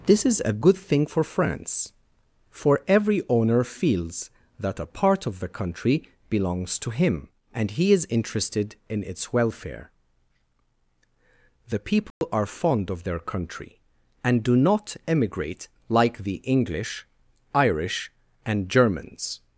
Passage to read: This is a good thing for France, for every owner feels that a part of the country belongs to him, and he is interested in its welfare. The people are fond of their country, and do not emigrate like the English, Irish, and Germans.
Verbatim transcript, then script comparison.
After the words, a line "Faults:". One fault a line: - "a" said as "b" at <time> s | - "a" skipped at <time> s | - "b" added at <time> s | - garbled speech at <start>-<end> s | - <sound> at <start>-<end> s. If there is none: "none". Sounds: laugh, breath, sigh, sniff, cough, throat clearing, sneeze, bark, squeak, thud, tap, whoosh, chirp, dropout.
This is a good thing for France, for every owner feels that a part of the country belongs to him, and he is interested in its welfare. The people are fond of their country, and do not emigrate like the English, Irish, and Germans.
Faults:
- dropout at 12.1-12.2 s